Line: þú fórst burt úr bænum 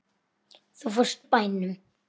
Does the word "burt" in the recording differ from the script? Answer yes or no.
yes